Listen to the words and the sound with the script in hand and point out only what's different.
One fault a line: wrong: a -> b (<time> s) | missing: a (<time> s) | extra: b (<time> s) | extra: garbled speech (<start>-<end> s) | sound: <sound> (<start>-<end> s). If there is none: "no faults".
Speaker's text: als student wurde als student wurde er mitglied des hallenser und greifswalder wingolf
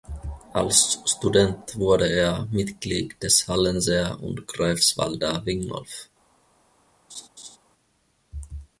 missing: als student wurde (2.1 s)
sound: laugh (7.1-7.6 s)